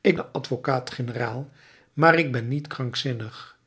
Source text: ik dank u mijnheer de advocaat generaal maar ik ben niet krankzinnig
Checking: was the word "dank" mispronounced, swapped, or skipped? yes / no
yes